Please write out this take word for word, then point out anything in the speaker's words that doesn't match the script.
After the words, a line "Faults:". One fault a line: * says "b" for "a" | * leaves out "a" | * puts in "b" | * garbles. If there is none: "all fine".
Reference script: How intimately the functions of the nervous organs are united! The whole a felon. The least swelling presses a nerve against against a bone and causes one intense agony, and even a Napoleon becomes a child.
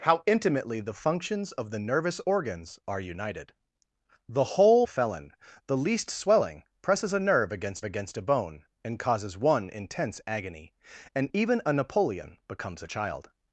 How intimately the functions of the nervous organs are united! The whole a felon. The least swelling presses a nerve against against a bone and causes one intense agony, and even a Napoleon becomes a child.
Faults:
all fine